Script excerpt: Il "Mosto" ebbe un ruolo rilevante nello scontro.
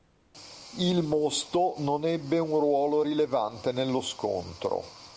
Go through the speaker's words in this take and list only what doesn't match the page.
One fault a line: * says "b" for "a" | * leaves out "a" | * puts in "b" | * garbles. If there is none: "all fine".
* puts in "non"